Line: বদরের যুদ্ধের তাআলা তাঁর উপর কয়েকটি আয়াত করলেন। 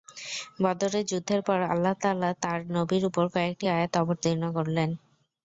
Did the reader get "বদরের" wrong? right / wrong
right